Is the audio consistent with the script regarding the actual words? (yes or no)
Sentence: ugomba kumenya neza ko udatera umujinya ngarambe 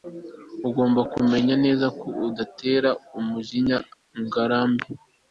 yes